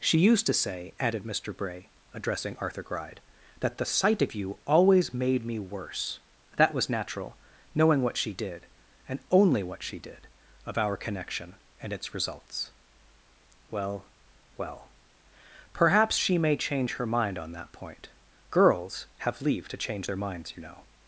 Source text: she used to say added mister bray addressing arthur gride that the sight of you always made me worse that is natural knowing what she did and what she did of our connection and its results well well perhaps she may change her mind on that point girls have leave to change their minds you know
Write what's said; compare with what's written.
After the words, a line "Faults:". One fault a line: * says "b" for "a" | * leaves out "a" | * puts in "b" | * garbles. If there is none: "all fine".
she used to say added mister bray addressing arthur gride that the sight of you always made me worse that was natural knowing what she did and only what she did of our connection and its results well well perhaps she may change her mind on that point girls have leave to change their minds you know
Faults:
* says "was" for "is"
* puts in "only"